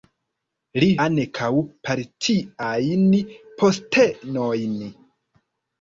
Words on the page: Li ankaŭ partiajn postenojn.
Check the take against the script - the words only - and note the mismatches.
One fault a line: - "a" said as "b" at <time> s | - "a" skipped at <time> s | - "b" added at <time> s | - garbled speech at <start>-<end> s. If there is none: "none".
none